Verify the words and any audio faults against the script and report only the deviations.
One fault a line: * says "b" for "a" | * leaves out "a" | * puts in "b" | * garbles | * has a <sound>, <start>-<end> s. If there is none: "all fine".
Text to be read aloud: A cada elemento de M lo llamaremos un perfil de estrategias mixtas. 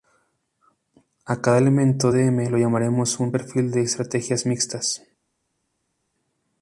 all fine